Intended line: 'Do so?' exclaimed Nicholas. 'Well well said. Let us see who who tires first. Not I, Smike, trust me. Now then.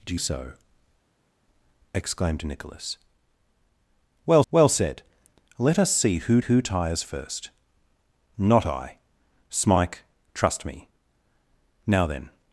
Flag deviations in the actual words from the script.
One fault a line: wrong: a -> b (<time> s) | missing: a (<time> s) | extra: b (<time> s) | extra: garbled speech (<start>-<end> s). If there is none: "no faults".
no faults